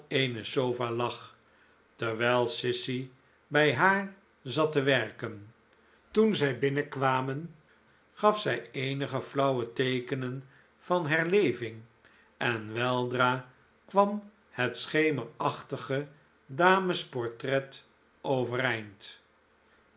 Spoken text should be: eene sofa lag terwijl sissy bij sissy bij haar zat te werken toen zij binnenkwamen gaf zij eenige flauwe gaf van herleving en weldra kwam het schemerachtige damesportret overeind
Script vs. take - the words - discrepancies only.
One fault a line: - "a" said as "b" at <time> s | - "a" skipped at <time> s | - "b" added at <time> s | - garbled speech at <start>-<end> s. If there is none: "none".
- "sissy bij" skipped at 3.8 s
- "gaf" said as "teekenen" at 9.7 s